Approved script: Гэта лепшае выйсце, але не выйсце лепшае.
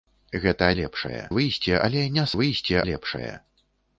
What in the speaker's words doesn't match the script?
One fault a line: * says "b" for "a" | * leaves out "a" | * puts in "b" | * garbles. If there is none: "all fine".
all fine